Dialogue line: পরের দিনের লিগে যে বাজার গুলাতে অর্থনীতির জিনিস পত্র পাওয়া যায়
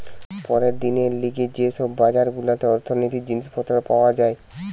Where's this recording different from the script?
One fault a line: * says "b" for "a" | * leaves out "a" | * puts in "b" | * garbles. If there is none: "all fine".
* puts in "সব"